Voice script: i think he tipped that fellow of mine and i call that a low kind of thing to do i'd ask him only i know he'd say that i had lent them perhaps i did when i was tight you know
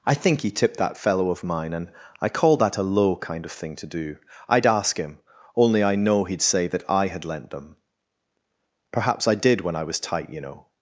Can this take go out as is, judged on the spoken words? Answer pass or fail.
pass